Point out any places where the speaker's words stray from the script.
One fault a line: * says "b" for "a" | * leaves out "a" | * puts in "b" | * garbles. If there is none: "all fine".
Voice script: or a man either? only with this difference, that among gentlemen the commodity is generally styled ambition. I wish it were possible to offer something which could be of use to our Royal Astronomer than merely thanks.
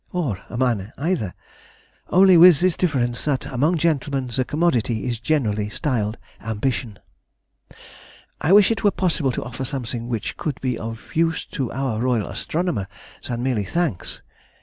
all fine